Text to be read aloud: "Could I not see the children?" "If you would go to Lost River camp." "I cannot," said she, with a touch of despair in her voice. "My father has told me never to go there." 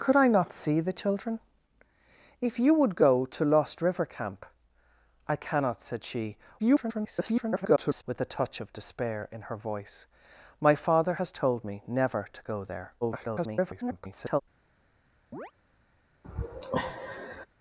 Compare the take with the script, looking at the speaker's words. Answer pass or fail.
fail